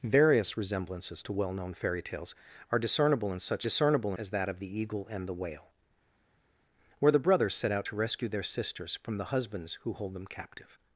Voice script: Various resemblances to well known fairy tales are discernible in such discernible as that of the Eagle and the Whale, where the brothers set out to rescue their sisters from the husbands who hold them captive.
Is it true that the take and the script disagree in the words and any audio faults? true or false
false